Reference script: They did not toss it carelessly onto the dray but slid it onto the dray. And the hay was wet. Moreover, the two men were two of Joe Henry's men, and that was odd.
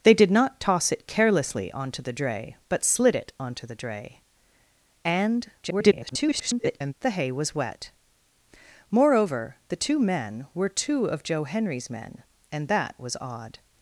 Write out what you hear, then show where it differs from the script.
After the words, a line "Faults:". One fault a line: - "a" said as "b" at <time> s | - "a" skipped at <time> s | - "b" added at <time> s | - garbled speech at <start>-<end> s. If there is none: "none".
They did not toss it carelessly onto the dray but slid it onto the dray. And [garbled] the hay was wet. Moreover, the two men were two of Joe Henry's men, and that was odd.
Faults:
- garbled speech at 5.6-6.9 s